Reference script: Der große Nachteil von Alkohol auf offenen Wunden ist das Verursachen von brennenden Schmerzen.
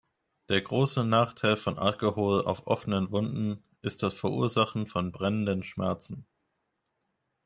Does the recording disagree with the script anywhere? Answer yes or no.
no